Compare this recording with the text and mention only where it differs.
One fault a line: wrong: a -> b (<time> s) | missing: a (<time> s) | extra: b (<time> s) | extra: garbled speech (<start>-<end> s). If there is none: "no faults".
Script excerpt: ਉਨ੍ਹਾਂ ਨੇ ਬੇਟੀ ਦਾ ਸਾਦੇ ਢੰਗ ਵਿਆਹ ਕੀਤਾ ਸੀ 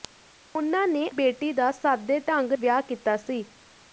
no faults